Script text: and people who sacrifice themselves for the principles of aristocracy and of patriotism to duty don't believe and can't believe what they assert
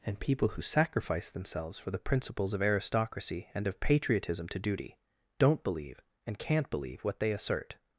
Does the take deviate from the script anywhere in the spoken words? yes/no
no